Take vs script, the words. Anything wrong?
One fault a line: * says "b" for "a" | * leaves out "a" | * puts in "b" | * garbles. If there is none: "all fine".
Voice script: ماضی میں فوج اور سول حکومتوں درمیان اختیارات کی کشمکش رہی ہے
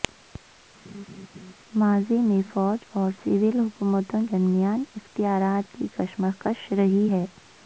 all fine